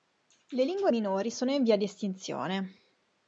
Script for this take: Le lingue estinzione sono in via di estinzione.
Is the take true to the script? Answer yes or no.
no